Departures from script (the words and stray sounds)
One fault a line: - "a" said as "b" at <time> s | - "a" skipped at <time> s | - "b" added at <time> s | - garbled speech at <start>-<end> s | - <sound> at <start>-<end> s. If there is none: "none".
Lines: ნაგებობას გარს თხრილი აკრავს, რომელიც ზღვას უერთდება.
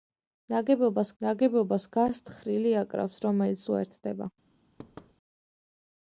- "ნაგებობას" added at 1.2 s
- "ზღვას" skipped at 3.6 s
- thud at 4.8-5.1 s